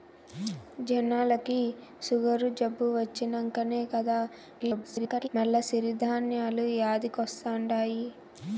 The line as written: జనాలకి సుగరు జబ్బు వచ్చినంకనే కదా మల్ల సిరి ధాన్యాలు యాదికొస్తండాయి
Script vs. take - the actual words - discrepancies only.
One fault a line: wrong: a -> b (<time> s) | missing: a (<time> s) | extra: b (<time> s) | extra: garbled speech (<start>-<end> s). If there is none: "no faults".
extra: garbled speech (4.6-5.3 s)